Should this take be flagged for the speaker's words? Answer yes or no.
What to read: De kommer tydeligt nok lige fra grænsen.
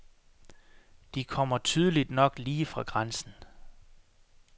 no